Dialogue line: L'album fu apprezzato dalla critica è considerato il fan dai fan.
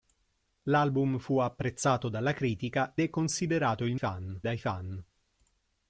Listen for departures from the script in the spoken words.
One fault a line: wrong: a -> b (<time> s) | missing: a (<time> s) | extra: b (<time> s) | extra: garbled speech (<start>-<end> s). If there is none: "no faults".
no faults